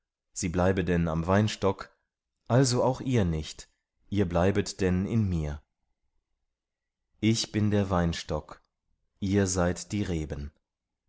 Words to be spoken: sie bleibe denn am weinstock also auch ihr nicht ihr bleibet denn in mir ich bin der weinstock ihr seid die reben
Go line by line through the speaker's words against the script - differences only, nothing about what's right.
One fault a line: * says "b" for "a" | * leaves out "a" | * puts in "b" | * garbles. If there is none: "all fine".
all fine